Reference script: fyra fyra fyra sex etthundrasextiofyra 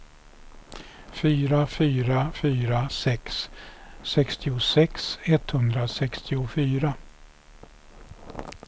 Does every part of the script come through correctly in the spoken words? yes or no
no